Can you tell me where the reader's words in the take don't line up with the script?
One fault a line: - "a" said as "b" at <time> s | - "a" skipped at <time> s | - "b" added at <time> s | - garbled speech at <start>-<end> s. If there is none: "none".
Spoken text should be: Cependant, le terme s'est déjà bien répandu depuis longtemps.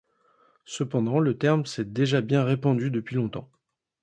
none